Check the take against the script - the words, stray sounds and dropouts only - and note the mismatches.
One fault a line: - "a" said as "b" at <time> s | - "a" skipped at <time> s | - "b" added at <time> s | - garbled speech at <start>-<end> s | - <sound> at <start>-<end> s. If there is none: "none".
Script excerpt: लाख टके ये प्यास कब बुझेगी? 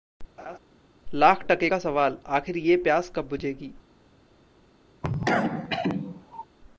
- laugh at 0.4-0.6 s
- "का सवाल आखिर" added at 1.7 s
- cough at 5.0-6.4 s